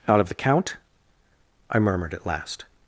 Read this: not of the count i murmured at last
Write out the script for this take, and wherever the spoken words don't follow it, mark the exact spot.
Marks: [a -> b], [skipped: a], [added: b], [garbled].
[not -> out] of the count i murmured at last